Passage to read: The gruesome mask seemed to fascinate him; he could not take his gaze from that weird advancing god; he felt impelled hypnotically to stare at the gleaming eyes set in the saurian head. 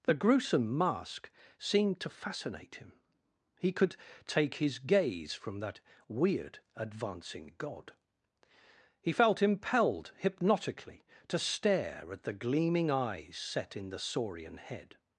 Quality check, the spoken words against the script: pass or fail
fail